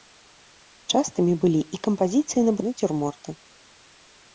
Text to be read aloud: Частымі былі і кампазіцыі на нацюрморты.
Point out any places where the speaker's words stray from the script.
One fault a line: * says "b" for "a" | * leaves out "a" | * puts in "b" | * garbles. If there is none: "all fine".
all fine